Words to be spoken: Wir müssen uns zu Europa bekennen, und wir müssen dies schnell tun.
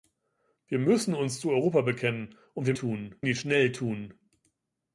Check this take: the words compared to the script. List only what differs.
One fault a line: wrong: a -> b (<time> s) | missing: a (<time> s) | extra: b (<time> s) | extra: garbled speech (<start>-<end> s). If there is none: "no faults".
wrong: müssen -> tun (2.7 s)